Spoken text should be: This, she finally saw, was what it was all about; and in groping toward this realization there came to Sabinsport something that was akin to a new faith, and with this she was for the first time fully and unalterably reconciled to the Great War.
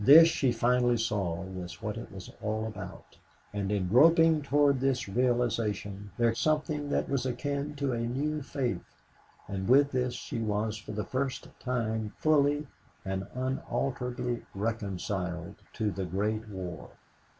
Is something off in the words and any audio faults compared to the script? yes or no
yes